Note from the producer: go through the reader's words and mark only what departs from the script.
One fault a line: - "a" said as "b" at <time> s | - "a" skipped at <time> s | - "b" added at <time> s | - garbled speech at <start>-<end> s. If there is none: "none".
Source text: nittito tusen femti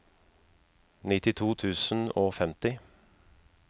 - "og" added at 2.1 s